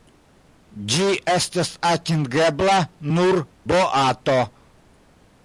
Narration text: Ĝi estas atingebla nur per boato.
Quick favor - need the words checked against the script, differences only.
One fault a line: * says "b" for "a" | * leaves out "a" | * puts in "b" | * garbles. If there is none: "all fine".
* leaves out "per"